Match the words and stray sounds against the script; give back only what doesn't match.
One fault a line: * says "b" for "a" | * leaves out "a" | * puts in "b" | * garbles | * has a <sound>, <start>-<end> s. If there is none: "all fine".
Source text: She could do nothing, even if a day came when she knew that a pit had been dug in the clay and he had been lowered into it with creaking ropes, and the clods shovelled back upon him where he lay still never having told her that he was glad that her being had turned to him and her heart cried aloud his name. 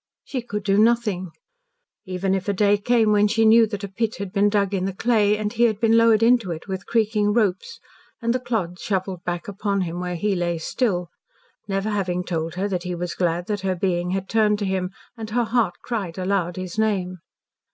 all fine